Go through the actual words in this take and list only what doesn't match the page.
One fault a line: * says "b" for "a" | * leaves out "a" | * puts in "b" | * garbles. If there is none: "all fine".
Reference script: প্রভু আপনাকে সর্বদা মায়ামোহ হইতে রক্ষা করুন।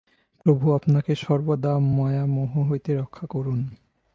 all fine